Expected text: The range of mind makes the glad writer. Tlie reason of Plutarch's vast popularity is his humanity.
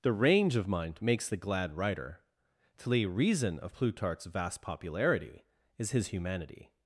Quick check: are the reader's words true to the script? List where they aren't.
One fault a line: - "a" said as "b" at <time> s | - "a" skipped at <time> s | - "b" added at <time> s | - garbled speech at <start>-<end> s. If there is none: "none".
none